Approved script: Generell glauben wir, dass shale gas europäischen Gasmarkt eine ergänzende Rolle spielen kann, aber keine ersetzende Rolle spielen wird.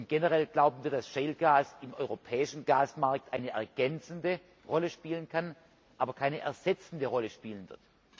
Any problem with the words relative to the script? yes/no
yes